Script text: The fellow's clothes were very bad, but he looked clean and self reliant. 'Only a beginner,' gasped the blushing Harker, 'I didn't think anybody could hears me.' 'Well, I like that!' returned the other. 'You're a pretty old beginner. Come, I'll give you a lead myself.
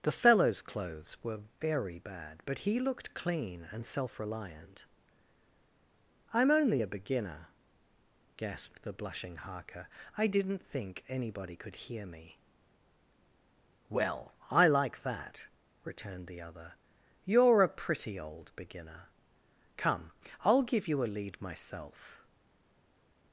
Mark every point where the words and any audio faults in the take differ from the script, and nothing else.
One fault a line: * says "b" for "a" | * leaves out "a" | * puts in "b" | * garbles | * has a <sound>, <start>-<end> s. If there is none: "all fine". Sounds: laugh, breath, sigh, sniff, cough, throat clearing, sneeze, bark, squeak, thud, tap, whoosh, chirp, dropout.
* puts in "I'm"
* says "hear" for "hears"